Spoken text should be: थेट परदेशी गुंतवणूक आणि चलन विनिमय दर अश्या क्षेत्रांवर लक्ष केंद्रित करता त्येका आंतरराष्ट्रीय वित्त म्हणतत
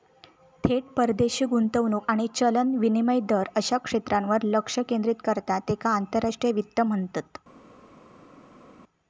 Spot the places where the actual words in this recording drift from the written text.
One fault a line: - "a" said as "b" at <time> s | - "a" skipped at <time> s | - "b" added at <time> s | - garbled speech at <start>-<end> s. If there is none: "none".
none